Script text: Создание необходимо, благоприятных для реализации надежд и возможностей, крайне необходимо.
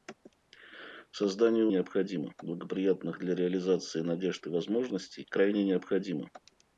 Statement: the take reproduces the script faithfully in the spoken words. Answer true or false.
true